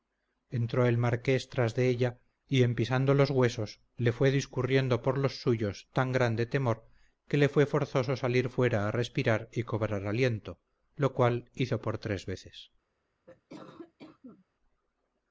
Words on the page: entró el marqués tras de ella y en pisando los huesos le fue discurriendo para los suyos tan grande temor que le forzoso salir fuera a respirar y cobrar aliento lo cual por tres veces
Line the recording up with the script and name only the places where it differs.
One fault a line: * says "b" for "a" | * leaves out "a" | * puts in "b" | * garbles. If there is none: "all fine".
* says "por" for "para"
* puts in "fue"
* puts in "hizo"